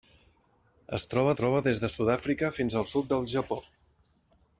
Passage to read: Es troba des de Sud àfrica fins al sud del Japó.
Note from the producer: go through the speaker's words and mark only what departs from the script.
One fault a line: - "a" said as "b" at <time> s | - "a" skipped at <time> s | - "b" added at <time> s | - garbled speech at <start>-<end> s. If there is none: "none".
- "troba" added at 1.4 s